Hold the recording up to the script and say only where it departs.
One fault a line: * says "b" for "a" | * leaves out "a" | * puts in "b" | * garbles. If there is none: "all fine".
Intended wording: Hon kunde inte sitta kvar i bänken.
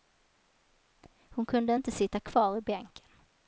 all fine